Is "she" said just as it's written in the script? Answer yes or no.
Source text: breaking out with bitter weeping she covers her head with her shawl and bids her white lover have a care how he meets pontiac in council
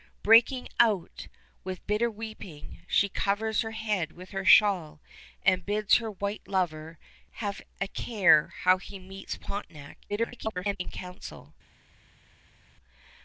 yes